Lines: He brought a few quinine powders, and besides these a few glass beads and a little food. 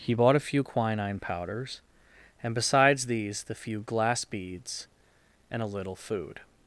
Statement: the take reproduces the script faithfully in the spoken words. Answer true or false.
false